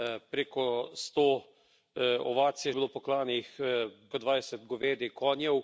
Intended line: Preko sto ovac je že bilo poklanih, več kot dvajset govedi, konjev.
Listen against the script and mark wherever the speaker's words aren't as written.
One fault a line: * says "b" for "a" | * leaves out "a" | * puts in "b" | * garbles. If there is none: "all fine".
* leaves out "že"
* leaves out "več"